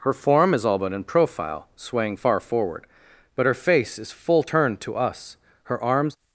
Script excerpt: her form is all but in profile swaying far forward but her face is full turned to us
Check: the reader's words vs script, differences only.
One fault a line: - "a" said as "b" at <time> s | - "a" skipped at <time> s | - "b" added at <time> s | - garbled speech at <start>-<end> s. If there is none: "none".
- "her arms" added at 5.6 s